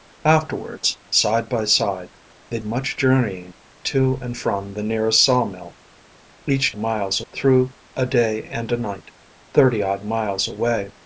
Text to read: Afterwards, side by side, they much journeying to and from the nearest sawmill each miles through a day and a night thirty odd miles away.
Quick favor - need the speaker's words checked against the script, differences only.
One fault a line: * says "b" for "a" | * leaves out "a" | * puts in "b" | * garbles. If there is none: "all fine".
all fine